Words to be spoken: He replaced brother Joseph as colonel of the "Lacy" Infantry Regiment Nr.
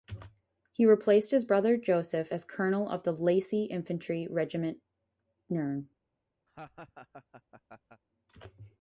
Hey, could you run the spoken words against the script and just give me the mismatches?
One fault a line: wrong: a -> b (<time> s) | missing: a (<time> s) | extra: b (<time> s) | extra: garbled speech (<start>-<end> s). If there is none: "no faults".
extra: his (1.3 s)